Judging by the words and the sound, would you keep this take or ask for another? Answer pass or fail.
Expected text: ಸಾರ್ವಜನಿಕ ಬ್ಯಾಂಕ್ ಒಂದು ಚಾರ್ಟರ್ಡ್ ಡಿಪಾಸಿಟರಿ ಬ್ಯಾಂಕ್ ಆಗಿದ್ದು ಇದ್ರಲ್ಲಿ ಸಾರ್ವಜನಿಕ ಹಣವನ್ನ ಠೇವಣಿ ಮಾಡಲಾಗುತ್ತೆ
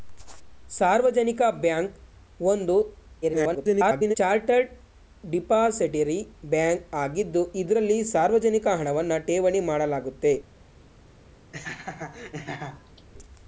fail